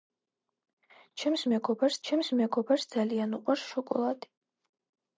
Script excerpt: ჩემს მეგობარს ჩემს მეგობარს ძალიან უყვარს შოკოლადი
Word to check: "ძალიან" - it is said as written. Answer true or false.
true